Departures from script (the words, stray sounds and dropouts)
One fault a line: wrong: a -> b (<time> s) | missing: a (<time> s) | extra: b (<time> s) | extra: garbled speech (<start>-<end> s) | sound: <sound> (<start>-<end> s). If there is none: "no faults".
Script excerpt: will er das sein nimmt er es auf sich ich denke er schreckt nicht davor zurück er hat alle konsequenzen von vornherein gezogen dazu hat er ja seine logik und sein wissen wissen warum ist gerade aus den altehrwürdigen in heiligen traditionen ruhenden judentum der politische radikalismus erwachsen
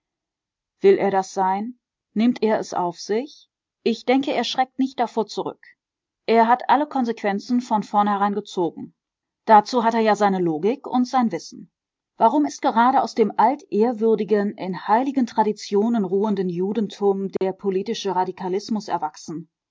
missing: wissen (11.7 s)
wrong: den -> dem (13.2 s)
sound: dropout (17.4-17.4 s)